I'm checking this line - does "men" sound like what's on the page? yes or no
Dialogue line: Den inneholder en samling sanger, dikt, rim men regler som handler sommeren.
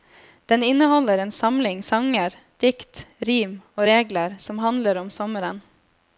no